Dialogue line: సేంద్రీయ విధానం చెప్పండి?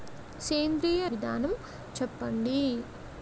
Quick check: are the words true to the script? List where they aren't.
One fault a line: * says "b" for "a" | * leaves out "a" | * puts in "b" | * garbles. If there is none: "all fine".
all fine